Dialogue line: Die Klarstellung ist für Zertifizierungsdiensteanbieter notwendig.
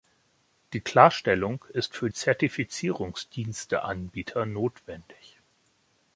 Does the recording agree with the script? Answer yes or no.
yes